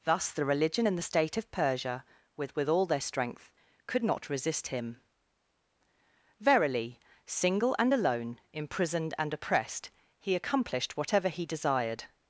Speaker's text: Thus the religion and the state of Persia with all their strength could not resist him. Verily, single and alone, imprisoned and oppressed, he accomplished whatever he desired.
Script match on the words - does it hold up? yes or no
no